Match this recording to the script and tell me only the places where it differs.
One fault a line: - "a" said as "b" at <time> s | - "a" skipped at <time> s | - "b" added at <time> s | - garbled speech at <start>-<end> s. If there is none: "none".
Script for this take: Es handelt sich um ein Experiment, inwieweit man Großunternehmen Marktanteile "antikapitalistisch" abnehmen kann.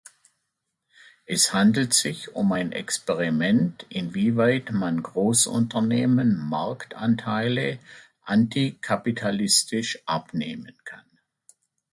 none